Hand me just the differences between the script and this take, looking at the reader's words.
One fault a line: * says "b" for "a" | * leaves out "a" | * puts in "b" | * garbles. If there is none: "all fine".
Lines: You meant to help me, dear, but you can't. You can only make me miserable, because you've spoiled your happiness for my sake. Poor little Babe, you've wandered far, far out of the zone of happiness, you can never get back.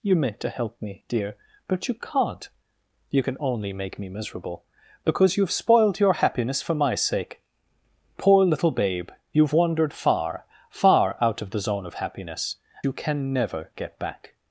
all fine